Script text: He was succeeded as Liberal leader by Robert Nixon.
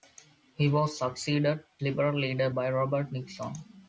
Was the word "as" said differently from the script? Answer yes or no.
yes